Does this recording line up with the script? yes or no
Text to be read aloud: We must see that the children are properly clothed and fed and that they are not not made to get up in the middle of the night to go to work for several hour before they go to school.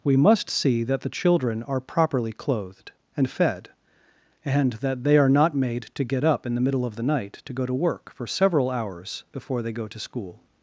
no